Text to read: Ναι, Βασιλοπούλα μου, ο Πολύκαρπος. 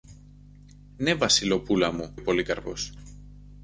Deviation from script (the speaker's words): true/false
false